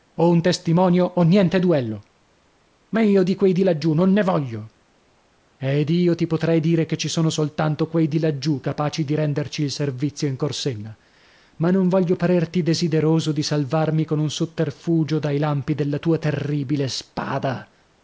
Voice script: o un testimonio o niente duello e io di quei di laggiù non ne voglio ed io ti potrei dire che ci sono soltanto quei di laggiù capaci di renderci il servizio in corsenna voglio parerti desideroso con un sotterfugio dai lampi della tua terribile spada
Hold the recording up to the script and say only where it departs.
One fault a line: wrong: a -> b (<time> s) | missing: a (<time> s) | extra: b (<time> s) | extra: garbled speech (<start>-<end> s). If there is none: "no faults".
wrong: e -> ma (2.9 s)
extra: ma non (11.6 s)
extra: di salvarmi (13.3 s)